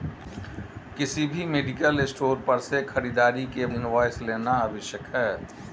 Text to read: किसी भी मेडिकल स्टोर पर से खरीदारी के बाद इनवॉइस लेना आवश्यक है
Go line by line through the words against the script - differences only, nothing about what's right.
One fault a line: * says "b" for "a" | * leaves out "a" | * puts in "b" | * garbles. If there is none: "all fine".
* leaves out "बाद"